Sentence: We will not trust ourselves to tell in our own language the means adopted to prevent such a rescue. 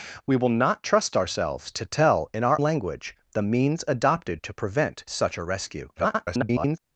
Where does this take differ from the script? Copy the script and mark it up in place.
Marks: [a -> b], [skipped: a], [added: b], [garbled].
We will not trust ourselves to tell in our [skipped: own] language the means adopted to prevent such a rescue. [garbled]